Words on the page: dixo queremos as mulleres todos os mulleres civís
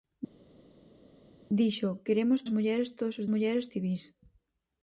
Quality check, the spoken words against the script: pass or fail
pass